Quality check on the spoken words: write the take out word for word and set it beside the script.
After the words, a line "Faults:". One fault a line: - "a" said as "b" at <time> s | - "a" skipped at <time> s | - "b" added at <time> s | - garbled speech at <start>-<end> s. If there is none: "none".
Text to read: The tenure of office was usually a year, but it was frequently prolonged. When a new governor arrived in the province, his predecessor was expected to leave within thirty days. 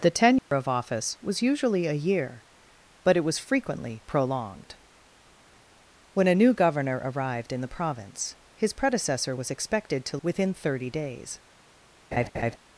The tenure of office was usually a year, but it was frequently prolonged. When a new governor arrived in the province, his predecessor was expected to within thirty days.
Faults:
- "leave" skipped at 10.2 s